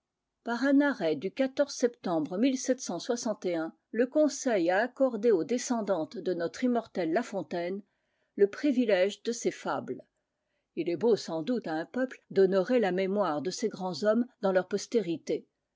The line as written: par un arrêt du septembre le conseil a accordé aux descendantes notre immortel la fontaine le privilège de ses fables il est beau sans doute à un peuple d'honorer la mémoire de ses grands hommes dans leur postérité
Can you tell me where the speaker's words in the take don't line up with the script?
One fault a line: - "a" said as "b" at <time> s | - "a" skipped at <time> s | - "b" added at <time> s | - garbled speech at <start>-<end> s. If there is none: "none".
- "de" added at 6.2 s